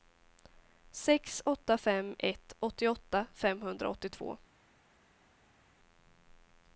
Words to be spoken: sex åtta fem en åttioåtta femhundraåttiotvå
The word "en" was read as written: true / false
false